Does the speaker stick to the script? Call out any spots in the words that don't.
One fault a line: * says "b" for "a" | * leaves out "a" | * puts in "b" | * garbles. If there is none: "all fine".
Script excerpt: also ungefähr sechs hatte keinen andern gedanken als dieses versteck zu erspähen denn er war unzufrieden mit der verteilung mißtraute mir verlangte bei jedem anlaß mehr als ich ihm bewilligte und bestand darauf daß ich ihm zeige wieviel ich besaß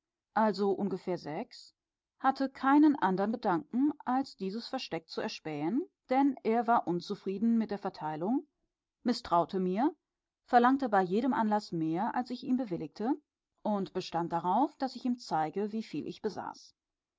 all fine